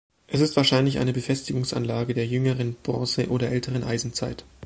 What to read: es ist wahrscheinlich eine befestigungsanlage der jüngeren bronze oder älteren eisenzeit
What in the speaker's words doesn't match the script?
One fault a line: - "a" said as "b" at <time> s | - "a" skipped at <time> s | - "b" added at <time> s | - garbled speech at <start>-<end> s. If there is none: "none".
none